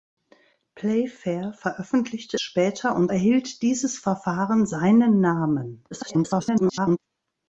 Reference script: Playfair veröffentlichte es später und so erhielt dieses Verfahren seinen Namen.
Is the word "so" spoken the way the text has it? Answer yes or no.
no